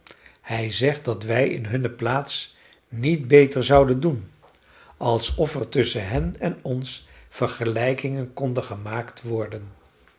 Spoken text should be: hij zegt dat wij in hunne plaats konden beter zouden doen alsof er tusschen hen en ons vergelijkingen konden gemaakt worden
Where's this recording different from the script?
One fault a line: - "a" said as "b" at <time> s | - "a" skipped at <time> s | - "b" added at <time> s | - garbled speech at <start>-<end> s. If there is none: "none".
- "konden" said as "niet" at 2.9 s